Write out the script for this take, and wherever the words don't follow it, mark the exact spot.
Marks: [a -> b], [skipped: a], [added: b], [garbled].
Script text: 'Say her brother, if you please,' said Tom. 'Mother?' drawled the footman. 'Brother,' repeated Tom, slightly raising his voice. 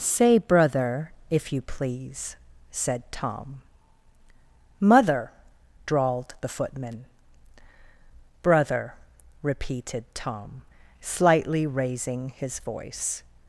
'Say [skipped: her] brother, if you please,' said Tom. 'Mother?' drawled the footman. 'Brother,' repeated Tom, slightly raising his voice.